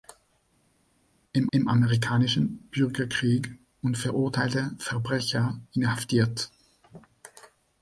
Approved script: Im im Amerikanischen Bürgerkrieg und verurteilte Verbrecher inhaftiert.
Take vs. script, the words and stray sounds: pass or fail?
pass